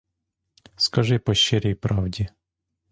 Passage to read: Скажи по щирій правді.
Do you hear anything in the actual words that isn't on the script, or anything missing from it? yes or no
no